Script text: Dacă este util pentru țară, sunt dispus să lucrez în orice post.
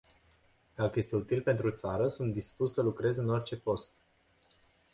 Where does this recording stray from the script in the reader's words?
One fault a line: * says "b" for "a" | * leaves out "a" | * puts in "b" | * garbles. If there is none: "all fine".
all fine